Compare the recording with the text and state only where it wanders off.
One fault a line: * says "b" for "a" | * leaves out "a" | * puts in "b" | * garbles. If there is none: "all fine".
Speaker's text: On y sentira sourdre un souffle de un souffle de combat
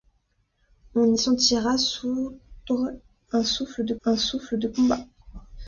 all fine